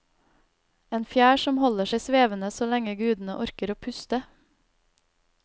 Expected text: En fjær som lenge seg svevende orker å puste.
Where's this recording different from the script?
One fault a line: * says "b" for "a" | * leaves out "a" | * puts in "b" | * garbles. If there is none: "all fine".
* says "holder" for "lenge"
* puts in "så lenge gudene"